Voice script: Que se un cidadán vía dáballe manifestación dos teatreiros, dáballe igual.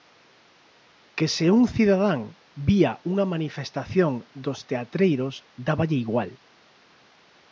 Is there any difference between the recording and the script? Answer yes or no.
yes